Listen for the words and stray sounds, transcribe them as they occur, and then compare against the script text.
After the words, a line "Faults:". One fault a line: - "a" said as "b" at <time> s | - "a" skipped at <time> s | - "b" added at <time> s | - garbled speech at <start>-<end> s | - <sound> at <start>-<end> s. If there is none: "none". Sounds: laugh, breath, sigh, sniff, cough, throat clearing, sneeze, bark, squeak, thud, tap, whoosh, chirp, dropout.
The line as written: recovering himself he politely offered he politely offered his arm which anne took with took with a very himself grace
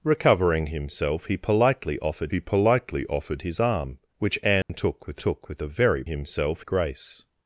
recovering himself he politely offered he politely offered his arm which anne took with took with a very himself grace
Faults:
- dropout at 4.6-4.7 s